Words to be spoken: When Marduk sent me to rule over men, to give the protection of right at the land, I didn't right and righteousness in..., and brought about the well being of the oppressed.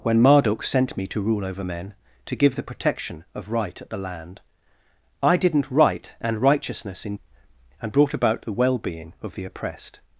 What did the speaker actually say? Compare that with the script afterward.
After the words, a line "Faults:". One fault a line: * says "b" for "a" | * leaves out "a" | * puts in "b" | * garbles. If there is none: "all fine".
When Marduk sent me to rule over men, to give the protection of right at the land, I didn't right and righteousness in..., and brought about the well being of the oppressed.
Faults:
all fine